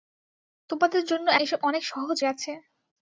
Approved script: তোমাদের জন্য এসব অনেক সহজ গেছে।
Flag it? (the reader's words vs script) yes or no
no